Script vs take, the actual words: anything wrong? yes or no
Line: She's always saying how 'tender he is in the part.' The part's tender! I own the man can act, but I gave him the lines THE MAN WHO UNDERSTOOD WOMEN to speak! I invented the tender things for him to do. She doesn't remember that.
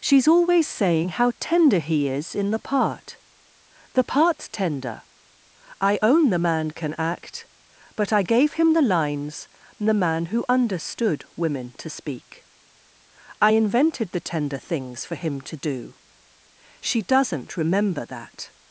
no